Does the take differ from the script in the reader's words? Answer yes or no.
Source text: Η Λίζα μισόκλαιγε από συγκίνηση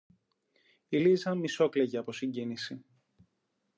no